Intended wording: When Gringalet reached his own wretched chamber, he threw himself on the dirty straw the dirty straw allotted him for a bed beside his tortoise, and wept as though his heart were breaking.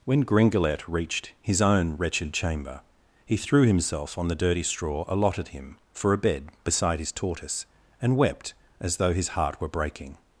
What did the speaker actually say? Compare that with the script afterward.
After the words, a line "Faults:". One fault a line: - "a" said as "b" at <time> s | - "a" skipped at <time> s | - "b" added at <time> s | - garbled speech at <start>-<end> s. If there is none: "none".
When Gringalet reached his own wretched chamber, he threw himself on the dirty straw allotted him for a bed beside his tortoise, and wept as though his heart were breaking.
Faults:
- "the dirty straw" skipped at 5.0 s